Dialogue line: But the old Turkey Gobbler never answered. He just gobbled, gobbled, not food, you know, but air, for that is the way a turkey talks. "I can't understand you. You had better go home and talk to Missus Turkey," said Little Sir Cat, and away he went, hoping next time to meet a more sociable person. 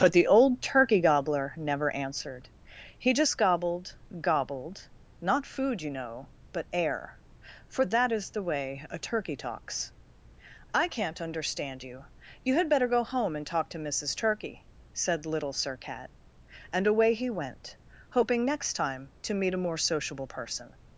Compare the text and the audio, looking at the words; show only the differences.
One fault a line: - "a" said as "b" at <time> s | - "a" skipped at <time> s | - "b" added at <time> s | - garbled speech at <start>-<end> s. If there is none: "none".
none